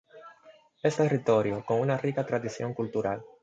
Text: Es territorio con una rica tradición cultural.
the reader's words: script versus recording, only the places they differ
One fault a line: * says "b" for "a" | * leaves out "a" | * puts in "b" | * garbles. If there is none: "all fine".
all fine